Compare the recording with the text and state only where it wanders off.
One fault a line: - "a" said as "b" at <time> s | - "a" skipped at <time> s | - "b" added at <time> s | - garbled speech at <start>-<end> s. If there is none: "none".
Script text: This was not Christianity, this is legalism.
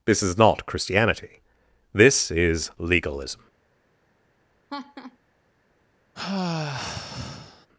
- "was" said as "is" at 0.2 s